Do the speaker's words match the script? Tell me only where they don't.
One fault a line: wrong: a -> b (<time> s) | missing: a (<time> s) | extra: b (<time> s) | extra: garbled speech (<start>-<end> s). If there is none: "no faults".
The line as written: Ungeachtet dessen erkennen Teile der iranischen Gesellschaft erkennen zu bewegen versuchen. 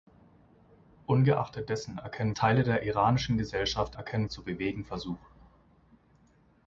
no faults